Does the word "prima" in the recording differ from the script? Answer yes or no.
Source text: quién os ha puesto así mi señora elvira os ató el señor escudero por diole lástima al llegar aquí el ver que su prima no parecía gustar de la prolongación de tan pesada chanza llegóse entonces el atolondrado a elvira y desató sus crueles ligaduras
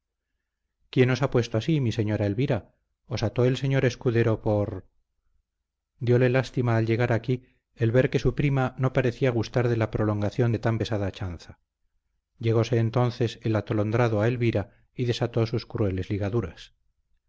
no